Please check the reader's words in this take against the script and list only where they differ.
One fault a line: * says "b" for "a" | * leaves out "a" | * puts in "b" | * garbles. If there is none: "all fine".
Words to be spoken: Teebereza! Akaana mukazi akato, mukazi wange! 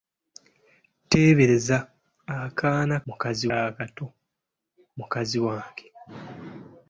all fine